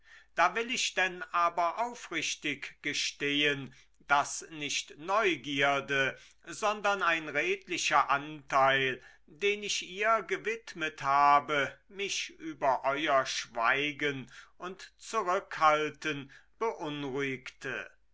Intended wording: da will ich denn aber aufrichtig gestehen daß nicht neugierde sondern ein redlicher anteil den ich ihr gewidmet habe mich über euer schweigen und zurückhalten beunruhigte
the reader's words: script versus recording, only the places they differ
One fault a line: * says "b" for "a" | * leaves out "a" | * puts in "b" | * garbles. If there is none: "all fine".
all fine